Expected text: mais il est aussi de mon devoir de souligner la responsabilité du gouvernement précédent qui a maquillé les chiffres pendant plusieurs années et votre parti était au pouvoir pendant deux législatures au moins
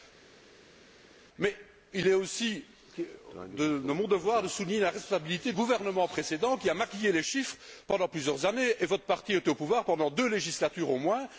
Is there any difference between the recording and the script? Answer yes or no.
yes